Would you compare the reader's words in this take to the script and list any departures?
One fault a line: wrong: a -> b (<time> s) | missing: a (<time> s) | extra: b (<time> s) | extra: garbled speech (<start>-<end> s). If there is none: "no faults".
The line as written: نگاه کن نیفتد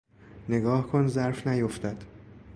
extra: ظرف (1.1 s)